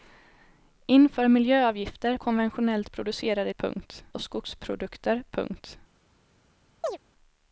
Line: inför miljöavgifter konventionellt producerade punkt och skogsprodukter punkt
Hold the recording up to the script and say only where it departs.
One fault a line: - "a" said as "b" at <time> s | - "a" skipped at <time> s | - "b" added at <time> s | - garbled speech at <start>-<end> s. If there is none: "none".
none